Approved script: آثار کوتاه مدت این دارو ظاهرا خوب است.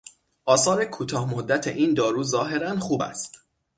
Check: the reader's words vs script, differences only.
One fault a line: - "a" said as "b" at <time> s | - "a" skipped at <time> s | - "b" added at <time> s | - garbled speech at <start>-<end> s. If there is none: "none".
none